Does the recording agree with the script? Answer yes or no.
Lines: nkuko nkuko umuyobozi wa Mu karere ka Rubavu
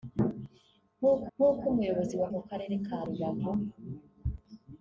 yes